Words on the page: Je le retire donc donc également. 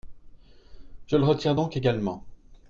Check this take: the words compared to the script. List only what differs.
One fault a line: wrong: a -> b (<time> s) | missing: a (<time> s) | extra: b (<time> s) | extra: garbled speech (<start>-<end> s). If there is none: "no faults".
missing: donc (1.8 s)